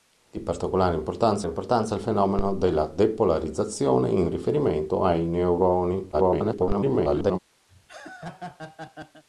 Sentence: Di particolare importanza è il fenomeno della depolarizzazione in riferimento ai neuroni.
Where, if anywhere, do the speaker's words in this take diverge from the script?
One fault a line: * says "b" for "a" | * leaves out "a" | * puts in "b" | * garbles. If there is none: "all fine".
* puts in "importanza"
* garbles